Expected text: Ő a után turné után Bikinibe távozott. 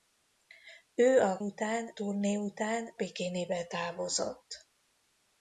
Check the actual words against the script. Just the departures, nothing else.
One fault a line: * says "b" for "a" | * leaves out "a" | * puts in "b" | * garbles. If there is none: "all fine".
all fine